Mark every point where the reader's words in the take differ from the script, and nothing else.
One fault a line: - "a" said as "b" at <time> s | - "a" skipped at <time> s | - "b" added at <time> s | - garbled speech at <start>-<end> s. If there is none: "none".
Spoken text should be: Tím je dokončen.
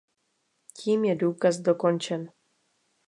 - "důkaz" added at 1.1 s